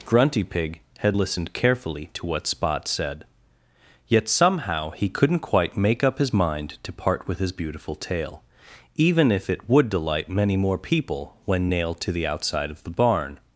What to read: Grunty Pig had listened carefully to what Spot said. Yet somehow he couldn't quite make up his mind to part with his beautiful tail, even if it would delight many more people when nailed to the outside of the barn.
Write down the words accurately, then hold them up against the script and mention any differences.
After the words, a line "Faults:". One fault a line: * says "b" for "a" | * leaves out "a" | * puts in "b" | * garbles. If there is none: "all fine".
Grunty Pig had listened carefully to what Spot said. Yet somehow he couldn't quite make up his mind to part with his beautiful tail, even if it would delight many more people when nailed to the outside of the barn.
Faults:
all fine